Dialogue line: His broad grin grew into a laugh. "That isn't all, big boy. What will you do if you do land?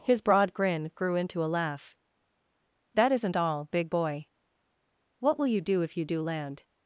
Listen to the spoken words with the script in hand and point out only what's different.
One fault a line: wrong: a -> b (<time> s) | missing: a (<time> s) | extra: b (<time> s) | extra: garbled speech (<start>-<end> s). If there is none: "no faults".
no faults